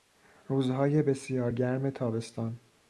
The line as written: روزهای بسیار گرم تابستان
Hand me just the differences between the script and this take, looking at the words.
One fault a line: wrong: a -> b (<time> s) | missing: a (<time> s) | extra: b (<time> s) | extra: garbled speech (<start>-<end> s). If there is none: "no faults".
no faults